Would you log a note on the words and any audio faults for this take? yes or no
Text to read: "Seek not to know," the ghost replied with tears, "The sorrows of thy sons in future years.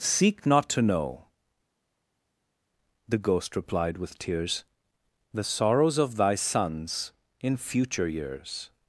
no